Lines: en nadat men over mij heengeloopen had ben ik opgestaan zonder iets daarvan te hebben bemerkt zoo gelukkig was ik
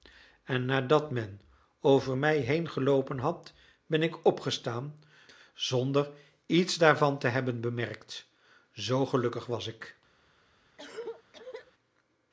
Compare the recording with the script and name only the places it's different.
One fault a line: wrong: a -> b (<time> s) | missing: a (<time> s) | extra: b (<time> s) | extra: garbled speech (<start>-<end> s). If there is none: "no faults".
no faults